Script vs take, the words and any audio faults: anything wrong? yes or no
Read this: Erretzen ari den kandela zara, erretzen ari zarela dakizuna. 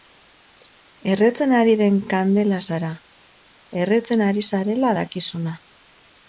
no